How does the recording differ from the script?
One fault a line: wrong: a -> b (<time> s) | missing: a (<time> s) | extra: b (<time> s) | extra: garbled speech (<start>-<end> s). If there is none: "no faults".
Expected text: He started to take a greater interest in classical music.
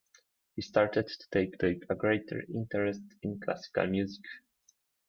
extra: take (1.6 s)